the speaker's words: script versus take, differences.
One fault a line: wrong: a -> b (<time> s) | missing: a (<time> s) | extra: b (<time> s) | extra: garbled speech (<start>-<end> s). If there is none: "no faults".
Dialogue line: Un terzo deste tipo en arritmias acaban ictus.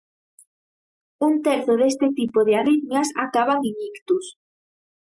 wrong: en -> de (2.4 s)
extra: en (3.6 s)